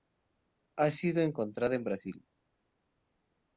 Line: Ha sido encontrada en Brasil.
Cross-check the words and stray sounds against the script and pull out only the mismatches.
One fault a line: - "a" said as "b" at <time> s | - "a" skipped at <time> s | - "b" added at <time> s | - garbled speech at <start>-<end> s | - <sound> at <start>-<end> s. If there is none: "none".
none